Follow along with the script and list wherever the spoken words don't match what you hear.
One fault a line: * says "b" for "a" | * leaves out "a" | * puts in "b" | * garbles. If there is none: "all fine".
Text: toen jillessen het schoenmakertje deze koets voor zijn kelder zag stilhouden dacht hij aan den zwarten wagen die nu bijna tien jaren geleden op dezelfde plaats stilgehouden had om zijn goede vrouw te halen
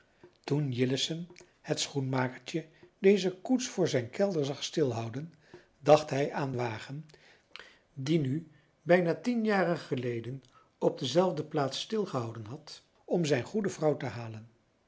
* leaves out "den zwarten"